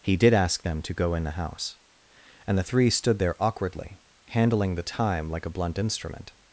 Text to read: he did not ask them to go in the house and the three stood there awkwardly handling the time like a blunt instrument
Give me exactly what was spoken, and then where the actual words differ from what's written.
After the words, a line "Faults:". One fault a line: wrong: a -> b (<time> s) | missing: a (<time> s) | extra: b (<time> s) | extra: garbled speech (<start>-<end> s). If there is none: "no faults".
he did ask them to go in the house and the three stood there awkwardly handling the time like a blunt instrument
Faults:
missing: not (0.3 s)